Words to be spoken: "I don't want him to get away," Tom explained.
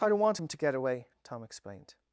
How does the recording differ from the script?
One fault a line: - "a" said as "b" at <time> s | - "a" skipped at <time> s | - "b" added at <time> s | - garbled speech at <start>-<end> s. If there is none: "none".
none